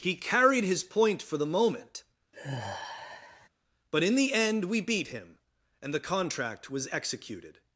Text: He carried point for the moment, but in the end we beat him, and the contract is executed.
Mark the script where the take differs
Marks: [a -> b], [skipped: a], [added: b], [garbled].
He carried [added: his] point for the moment, but in the end we beat him, and the contract [is -> was] executed.